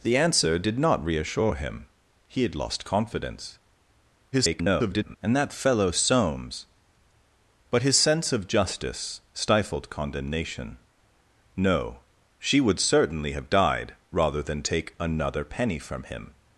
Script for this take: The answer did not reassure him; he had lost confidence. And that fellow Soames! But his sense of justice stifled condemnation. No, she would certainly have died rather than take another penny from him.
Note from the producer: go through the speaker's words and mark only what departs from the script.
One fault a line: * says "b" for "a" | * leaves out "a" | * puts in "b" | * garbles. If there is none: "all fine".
* garbles